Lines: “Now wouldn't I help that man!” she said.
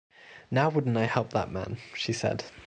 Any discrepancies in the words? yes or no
no